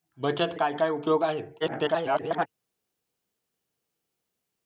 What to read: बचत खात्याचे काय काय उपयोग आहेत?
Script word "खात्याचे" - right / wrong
wrong